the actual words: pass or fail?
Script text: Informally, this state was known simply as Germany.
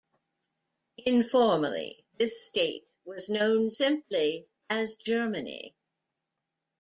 pass